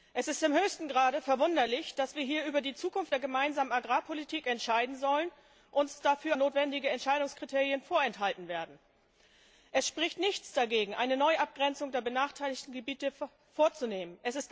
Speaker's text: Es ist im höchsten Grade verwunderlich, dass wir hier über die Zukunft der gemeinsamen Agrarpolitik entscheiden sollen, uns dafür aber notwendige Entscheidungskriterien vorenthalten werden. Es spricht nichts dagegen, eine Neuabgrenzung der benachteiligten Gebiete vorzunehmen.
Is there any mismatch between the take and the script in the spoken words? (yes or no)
yes